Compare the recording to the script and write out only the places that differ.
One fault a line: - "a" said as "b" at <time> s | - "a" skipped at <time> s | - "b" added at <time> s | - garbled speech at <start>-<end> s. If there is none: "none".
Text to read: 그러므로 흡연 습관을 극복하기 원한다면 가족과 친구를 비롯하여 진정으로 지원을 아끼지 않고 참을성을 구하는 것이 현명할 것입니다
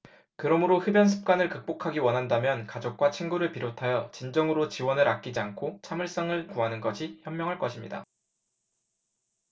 none